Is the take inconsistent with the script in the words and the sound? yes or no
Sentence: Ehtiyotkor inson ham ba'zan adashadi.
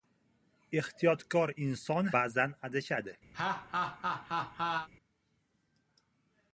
yes